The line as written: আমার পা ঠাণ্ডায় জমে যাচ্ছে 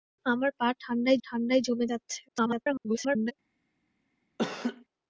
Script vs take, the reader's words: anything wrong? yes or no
yes